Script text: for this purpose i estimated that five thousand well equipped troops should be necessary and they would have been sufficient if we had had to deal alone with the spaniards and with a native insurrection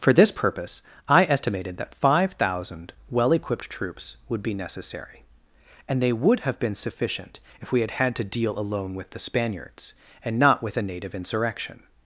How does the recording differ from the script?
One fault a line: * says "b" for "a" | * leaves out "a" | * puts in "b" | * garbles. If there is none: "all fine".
* says "would" for "should"
* puts in "not"